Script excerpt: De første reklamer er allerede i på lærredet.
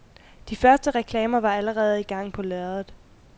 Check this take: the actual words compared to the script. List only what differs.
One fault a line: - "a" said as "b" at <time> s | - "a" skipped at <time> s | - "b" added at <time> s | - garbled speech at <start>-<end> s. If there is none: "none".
- "er" said as "var" at 1.4 s
- "gang" added at 2.0 s